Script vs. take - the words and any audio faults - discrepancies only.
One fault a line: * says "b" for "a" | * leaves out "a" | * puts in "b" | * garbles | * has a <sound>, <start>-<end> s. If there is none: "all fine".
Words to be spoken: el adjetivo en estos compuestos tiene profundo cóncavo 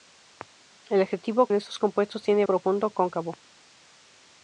all fine